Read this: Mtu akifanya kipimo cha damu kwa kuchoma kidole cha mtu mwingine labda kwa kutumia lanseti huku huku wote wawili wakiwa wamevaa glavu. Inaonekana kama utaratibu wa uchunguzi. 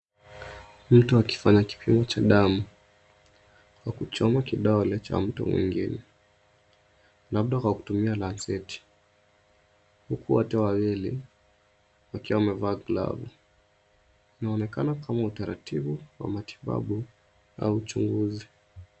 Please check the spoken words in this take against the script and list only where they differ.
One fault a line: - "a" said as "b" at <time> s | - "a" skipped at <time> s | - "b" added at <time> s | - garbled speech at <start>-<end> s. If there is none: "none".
- "huku" skipped at 10.3 s
- "matibabu au" added at 16.3 s